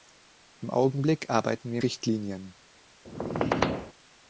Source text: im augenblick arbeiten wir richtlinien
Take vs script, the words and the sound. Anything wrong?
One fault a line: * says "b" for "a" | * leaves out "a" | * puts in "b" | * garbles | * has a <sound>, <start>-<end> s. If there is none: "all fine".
* has a squeak, 3.0-3.9 s